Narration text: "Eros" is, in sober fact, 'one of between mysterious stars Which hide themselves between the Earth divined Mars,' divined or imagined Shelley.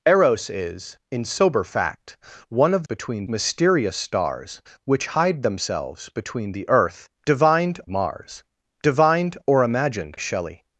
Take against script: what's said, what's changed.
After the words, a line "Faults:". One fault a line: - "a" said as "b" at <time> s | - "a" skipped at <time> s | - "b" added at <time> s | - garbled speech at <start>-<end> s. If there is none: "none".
"Eros" is, in sober fact, 'one of between mysterious stars Which hide themselves between the Earth divined Mars,' divined or imagined Shelley.
Faults:
none